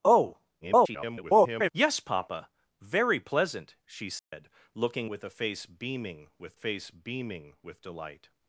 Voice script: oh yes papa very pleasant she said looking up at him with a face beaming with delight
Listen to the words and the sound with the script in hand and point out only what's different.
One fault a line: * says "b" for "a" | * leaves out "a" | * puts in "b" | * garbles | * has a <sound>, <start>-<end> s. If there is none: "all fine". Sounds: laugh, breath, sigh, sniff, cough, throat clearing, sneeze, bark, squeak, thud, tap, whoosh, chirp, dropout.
* garbles
* has a dropout, 4.2-4.3 s
* says "with a face beaming" for "up at him"
* leaves out "a"